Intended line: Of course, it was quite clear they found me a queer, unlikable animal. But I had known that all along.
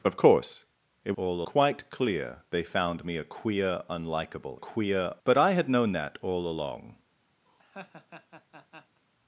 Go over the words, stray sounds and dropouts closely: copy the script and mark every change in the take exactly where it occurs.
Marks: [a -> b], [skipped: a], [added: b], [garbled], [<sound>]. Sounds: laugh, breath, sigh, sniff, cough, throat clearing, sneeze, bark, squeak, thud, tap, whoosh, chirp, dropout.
Of course, it [was -> all] quite clear they found me a queer, unlikable [animal. -> queer] But I had known that all along. [laugh]